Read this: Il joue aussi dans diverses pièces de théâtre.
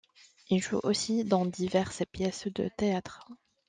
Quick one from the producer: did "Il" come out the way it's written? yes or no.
yes